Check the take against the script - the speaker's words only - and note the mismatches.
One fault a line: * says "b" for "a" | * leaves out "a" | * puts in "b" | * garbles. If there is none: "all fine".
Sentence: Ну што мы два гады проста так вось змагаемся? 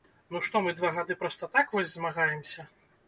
all fine